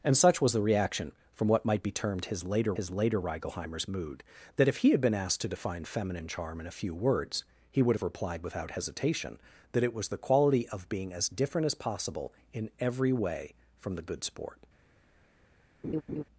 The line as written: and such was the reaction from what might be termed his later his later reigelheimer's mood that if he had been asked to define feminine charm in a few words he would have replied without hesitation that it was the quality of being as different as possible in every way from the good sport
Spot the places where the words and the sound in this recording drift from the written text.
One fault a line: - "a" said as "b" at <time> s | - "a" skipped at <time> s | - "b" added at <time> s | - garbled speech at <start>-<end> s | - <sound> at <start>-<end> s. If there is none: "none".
- laugh at 15.8-16.2 s